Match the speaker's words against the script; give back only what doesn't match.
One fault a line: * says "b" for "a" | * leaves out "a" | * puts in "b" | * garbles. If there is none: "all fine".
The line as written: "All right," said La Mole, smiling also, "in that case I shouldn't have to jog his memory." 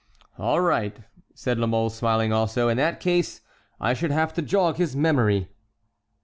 * says "should" for "shouldn't"